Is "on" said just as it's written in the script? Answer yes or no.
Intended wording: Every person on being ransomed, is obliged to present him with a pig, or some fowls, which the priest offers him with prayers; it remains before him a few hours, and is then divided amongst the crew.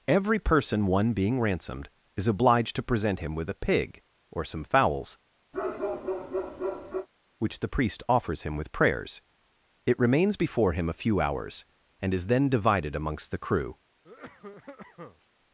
no